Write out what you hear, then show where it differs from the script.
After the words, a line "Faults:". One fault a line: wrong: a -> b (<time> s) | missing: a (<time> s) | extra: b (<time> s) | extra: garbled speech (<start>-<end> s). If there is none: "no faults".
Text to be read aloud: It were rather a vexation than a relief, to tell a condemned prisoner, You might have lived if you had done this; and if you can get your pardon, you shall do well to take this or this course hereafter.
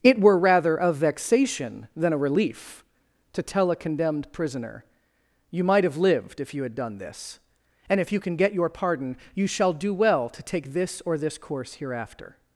It were rather a vexation than a relief, to tell a condemned prisoner, You might have lived if you had done this; and if you can get your pardon, you shall do well to take this or this course hereafter.
Faults:
no faults